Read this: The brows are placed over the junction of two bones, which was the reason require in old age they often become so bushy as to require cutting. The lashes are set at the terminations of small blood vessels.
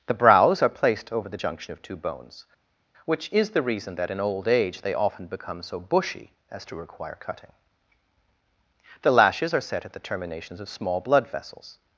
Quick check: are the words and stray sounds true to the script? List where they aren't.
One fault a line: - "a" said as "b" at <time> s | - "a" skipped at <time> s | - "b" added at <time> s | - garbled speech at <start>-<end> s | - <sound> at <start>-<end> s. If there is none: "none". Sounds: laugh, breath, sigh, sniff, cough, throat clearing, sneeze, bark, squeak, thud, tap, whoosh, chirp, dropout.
- "was" said as "is" at 3.3 s
- "require" said as "that" at 4.0 s